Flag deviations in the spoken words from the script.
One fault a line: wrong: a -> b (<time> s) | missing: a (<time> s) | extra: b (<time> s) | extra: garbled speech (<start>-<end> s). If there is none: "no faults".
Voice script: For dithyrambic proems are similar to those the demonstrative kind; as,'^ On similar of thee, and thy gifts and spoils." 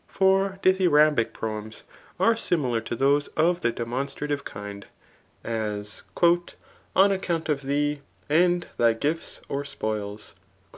extra: of (3.3 s)
wrong: similar -> account (7.1 s)
wrong: and -> or (9.5 s)